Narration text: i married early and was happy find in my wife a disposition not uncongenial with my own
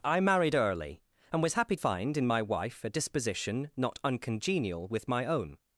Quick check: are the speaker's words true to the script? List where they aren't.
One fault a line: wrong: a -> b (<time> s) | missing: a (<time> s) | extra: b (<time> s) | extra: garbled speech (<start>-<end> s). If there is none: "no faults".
no faults